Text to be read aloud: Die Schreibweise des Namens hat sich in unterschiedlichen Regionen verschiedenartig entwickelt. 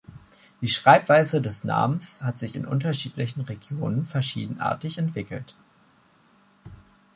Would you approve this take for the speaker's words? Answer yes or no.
yes